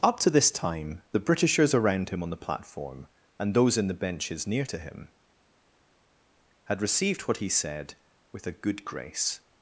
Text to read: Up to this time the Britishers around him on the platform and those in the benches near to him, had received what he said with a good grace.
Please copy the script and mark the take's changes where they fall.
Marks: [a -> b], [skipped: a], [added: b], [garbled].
Up to this time the Britishers around him on the platform and those in the benches near to him, had received what he said with a good grace.